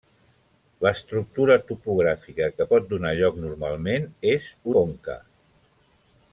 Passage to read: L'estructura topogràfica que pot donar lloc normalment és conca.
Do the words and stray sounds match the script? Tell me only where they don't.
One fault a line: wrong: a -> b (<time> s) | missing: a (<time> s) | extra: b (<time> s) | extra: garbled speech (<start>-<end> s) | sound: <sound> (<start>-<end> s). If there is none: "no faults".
no faults